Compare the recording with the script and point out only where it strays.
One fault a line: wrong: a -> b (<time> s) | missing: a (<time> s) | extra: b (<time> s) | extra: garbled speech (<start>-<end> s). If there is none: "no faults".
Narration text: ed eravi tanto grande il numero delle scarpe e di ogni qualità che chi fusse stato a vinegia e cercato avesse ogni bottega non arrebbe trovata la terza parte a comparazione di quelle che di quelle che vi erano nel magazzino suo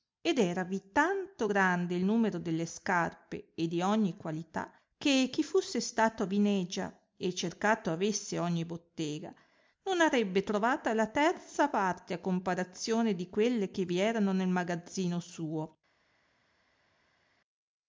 missing: di quelle che (13.9 s)